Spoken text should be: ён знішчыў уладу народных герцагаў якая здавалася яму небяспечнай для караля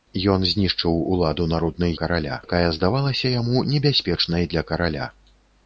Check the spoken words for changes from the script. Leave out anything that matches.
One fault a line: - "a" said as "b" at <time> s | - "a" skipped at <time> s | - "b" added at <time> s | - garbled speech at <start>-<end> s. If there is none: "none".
- "герцагаў" said as "караля" at 2.0 s